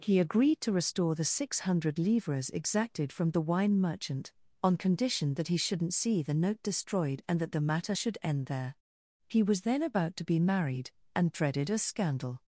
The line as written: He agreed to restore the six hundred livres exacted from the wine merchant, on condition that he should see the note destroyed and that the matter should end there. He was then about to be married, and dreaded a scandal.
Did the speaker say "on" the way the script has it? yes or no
yes